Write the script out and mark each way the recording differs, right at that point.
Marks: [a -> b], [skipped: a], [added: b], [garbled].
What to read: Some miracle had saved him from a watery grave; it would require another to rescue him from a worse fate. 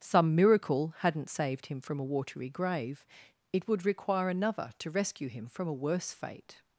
Some miracle [had -> hadn't] saved him from a watery grave; it would require another to rescue him from a worse fate.